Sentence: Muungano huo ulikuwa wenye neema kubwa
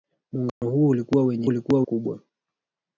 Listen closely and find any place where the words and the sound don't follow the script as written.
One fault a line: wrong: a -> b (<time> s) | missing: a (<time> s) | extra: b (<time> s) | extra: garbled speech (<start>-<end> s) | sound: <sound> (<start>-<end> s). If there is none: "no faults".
sound: dropout (0.5-0.6 s)
wrong: neema -> ulikuwa (1.5 s)